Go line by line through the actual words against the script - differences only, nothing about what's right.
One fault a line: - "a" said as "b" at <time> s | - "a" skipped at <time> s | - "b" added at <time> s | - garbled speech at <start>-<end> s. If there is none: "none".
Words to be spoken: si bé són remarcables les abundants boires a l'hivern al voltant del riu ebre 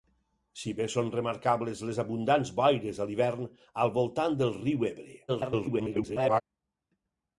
- garbled speech at 5.3-6.4 s